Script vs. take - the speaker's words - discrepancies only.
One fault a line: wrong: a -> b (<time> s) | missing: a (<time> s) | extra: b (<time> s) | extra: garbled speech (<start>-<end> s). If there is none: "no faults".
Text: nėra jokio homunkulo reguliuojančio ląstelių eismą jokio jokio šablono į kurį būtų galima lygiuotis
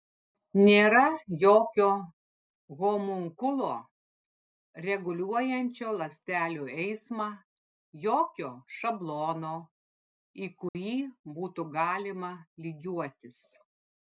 missing: jokio (8.5 s)